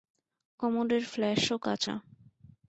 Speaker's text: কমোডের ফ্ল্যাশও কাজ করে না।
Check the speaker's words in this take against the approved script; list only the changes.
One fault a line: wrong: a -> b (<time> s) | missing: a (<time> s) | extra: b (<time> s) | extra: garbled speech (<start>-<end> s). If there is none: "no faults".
missing: করে (1.8 s)